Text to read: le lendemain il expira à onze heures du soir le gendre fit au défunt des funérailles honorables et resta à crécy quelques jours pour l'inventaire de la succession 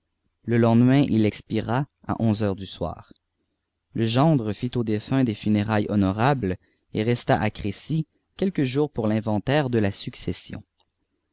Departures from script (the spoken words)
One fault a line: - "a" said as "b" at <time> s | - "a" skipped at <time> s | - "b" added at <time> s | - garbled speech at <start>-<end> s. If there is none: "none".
none